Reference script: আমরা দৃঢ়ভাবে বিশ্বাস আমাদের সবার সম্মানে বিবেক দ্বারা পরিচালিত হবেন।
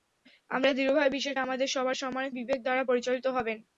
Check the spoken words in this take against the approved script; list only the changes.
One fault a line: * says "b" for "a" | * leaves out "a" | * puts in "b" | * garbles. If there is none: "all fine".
all fine